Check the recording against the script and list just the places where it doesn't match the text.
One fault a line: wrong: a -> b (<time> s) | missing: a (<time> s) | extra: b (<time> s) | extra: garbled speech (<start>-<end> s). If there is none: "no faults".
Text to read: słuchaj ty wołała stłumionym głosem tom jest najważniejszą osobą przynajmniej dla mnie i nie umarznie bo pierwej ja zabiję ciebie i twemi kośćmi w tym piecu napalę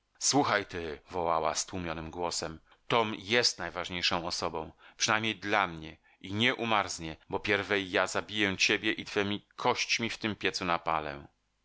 no faults